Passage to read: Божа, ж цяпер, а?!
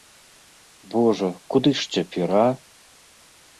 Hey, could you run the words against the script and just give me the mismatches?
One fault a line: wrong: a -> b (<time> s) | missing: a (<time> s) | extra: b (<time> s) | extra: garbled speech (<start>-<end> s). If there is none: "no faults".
extra: куды (1.6 s)